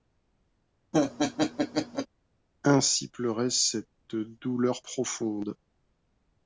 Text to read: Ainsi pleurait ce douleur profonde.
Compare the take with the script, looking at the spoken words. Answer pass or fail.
fail